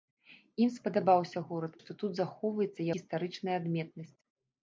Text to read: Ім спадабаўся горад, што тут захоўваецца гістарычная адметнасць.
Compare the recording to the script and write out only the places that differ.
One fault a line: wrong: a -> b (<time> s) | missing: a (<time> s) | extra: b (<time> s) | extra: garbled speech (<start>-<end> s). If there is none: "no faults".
no faults